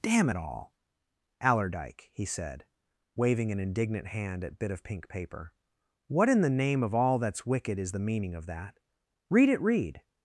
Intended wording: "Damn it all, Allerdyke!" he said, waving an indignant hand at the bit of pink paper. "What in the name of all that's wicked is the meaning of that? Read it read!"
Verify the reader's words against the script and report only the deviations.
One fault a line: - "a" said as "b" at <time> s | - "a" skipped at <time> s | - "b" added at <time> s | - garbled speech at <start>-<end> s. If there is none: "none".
- "the" skipped at 4.6 s